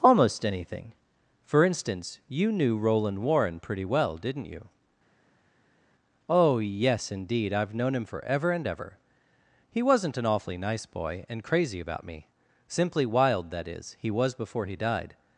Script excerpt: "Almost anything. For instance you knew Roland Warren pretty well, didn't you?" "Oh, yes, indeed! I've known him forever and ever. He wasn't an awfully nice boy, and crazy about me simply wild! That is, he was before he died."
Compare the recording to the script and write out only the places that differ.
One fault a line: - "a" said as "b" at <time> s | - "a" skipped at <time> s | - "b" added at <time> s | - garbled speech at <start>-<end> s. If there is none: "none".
none